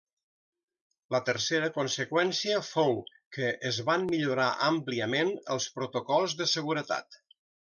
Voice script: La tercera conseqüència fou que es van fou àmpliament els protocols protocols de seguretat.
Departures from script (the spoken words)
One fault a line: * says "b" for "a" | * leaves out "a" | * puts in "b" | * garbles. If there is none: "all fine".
* says "millorar" for "fou"
* leaves out "protocols"